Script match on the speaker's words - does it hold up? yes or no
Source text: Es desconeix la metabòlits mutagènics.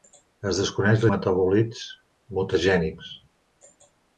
yes